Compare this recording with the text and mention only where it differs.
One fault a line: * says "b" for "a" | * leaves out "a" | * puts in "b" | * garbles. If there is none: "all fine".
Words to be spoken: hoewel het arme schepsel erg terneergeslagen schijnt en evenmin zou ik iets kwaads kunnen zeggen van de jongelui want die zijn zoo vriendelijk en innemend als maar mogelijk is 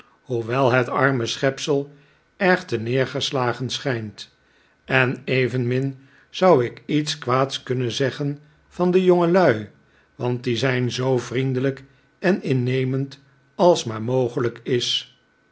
all fine